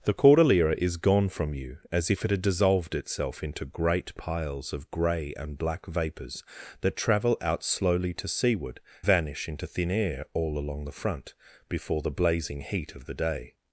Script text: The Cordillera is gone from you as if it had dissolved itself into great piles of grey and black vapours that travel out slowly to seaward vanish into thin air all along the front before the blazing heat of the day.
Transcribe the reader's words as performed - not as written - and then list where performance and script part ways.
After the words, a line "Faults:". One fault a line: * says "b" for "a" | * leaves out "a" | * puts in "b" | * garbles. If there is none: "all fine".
The Cordillera is gone from you as if it had dissolved itself into great piles of grey and black vapours that travel out slowly to seaward vanish into thin air all along the front before the blazing heat of the day.
Faults:
all fine